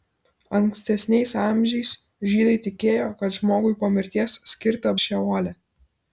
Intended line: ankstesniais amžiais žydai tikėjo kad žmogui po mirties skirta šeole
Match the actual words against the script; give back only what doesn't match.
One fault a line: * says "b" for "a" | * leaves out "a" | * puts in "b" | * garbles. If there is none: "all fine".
all fine